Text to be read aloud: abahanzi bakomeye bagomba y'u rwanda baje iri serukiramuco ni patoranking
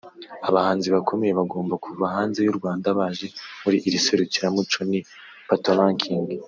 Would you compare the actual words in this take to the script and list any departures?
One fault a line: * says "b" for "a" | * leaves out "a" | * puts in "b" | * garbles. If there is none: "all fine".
* puts in "kuva hanze"
* puts in "muri"